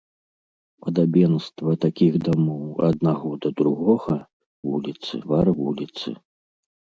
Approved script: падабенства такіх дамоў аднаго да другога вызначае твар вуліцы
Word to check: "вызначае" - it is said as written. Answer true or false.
false